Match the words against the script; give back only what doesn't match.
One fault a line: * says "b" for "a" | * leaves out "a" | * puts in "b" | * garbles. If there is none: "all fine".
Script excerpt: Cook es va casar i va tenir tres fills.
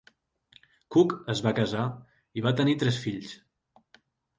all fine